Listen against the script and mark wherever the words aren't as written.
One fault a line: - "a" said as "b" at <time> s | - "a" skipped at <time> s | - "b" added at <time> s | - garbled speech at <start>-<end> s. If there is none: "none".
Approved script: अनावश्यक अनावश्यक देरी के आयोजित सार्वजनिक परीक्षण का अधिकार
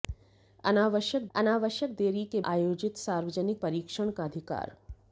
none